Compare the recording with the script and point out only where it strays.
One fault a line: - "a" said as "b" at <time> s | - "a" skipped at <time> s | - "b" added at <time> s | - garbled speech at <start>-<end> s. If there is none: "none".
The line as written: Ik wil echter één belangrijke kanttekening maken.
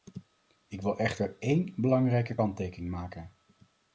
none